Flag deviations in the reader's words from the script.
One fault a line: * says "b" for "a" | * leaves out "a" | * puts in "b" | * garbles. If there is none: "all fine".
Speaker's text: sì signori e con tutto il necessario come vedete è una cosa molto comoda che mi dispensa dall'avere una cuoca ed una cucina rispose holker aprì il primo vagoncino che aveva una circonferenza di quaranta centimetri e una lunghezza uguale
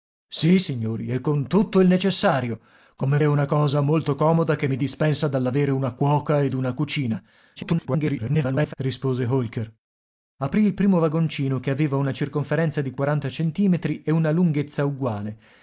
* leaves out "vedete"
* garbles